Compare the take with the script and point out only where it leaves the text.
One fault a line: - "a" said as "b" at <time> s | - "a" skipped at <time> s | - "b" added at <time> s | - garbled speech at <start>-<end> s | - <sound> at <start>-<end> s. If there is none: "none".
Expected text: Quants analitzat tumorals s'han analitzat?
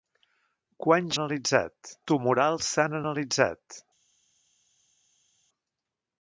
none